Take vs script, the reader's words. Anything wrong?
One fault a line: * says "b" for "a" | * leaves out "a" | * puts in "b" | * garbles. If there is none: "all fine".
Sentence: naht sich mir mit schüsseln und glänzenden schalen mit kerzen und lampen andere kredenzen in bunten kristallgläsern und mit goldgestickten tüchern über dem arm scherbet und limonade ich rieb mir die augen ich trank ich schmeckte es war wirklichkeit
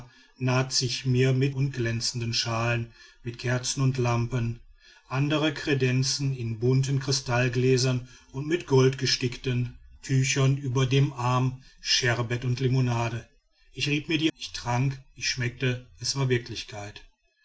* leaves out "schüsseln"
* leaves out "augen"